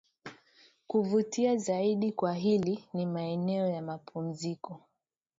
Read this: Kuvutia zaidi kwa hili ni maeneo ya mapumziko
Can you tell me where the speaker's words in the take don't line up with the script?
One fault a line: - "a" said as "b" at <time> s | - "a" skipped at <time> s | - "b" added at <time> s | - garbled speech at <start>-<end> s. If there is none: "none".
none